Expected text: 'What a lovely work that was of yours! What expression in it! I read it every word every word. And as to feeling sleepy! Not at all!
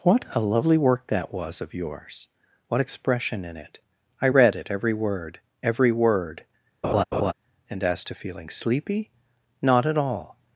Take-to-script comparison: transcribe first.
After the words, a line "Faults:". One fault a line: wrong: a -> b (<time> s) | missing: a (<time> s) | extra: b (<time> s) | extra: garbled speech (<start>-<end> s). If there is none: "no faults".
'What a lovely work that was of yours! What expression in it! I read it every word every word. And as to feeling sleepy! Not at all!
Faults:
no faults